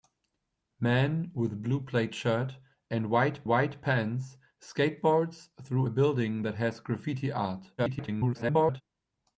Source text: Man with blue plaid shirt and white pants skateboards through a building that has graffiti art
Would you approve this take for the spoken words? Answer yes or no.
no